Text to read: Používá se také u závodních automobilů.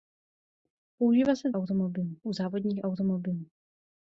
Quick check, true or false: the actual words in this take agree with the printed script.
false